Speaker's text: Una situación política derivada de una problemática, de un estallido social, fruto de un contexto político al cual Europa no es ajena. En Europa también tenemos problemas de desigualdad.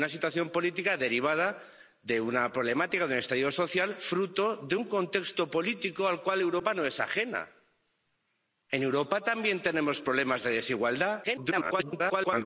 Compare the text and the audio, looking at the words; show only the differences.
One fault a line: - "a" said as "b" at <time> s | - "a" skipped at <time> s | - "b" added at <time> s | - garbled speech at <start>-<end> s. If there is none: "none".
- garbled speech at 11.2-12.5 s